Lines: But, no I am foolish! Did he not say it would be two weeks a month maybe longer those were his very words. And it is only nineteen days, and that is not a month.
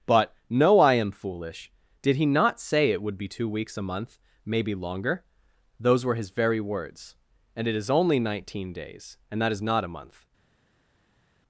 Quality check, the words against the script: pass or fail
pass